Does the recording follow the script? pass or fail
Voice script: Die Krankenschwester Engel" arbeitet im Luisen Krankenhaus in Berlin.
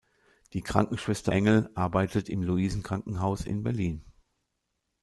pass